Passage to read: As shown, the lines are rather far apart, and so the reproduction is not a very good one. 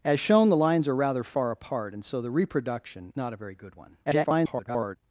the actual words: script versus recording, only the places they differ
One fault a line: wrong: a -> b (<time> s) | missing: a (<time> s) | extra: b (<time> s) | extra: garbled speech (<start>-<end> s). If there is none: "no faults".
missing: is (3.1 s)
extra: garbled speech (4.0-5.0 s)